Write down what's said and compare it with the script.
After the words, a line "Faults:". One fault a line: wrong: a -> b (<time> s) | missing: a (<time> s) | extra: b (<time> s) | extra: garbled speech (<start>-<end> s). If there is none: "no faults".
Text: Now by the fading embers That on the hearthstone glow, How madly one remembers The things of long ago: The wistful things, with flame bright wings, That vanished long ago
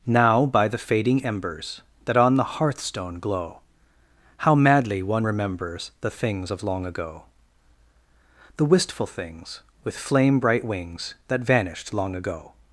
Now by the fading embers That on the hearthstone glow, How madly one remembers The things of long ago: The wistful things, with flame bright wings, That vanished long ago
Faults:
no faults